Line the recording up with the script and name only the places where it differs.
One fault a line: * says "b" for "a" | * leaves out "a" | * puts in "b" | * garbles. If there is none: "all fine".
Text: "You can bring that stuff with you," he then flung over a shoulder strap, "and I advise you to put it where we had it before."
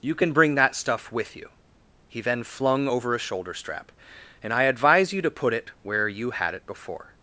* says "you" for "we"